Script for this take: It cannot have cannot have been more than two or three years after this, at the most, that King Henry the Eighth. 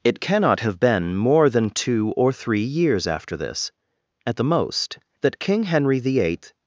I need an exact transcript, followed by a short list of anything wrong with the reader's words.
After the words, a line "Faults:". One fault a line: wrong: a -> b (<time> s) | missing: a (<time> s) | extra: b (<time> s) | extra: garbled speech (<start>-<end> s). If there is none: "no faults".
It cannot have been more than two or three years after this, at the most, that King Henry the Eighth.
Faults:
missing: cannot have (0.8 s)